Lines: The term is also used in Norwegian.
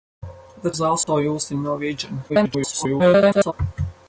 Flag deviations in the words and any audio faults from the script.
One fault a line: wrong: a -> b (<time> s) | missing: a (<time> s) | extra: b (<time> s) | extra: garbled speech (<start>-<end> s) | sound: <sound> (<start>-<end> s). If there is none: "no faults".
missing: term (0.7 s)
sound: dropout (1.0-1.1 s)
extra: garbled speech (2.3-3.5 s)